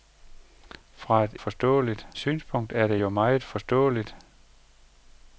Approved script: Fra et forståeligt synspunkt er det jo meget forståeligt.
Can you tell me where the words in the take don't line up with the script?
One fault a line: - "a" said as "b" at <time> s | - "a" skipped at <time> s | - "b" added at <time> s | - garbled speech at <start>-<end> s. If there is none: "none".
none